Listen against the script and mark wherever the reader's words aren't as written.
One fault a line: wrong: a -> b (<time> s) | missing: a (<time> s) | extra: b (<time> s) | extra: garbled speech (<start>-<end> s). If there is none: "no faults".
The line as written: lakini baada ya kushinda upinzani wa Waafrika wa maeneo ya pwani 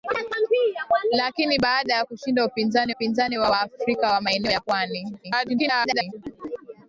extra: upinzani (2.9 s)
extra: garbled speech (5.2-6.1 s)